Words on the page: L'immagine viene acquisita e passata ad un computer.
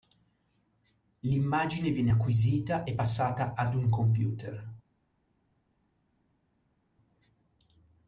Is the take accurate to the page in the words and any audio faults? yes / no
yes